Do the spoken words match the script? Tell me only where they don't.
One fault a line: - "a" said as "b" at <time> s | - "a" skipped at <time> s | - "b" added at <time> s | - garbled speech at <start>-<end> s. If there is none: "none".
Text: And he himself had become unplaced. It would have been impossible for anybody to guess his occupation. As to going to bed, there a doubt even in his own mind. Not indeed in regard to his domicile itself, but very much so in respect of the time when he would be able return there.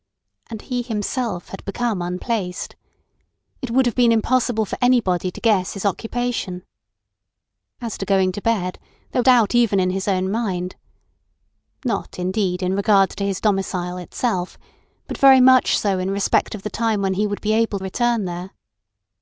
none